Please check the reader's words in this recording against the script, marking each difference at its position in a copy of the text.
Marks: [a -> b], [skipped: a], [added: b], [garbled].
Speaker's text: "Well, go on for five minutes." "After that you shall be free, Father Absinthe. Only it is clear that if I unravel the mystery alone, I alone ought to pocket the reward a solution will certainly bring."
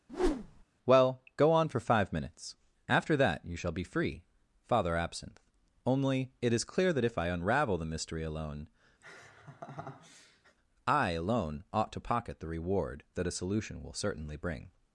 "Well, go on for five minutes." "After that you shall be free, Father Absinthe. Only it is clear that if I unravel the mystery alone, I alone ought to pocket the reward [added: that] a solution will certainly bring."